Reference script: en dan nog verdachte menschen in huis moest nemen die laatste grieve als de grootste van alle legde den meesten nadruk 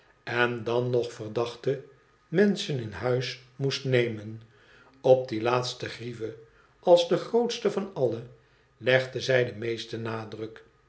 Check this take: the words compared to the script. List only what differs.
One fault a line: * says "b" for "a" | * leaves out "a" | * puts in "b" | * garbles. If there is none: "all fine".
* puts in "op"
* puts in "zij"